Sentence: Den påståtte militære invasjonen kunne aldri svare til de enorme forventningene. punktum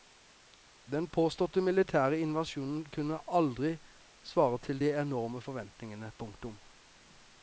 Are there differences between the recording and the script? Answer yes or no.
no